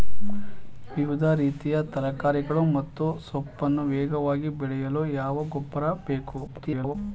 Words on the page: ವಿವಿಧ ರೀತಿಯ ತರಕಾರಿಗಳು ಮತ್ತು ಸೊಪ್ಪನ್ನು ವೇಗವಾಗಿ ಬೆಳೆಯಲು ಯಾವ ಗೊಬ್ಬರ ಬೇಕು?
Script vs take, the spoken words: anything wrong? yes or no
yes